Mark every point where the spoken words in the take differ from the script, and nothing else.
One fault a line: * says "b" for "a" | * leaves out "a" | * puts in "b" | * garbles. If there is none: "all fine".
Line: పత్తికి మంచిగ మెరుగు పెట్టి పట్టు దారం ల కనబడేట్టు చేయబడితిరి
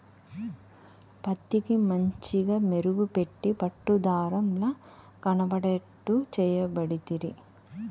all fine